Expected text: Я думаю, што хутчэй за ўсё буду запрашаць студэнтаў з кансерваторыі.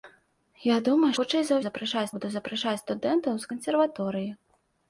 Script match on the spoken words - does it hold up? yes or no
no